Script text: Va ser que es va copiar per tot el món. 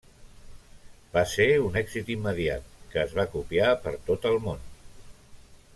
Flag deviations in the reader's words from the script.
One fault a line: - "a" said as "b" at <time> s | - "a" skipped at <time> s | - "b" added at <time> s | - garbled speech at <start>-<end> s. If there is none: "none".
- "un èxit immediat" added at 1.6 s